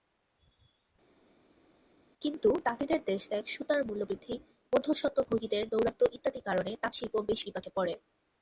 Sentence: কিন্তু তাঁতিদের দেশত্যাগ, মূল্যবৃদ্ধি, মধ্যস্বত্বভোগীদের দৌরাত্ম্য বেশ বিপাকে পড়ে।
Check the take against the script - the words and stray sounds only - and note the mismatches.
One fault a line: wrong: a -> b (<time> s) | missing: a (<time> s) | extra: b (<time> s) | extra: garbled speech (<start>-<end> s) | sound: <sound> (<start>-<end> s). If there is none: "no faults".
extra: সুতার (3.4 s)
extra: ইত্যাদি কারণে তাঁতশিল্প (6.1 s)